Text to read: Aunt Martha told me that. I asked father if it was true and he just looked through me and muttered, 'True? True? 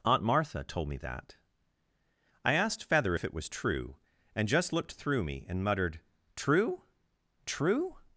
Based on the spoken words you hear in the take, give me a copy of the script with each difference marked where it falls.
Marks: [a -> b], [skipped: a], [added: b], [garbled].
Aunt Martha told me that. I asked [father -> feather] if it was true and [skipped: he] just looked through me and muttered, 'True? True?